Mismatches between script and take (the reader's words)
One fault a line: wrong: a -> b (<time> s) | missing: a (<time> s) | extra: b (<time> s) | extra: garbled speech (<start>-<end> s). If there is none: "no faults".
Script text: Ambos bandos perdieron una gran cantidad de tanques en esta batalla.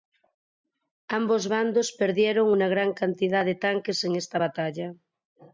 no faults